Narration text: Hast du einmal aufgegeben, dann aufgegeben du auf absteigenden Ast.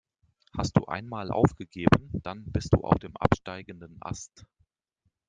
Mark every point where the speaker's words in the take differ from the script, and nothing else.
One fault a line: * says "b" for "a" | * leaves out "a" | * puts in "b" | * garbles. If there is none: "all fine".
* says "bist" for "aufgegeben"
* puts in "dem"